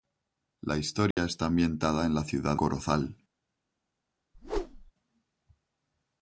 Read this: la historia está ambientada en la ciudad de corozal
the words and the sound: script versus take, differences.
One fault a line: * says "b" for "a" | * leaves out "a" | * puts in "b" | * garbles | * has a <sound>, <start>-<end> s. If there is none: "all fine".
* has a dropout, 1.1-1.2 s
* leaves out "de"
* has a whoosh, 4.3-4.9 s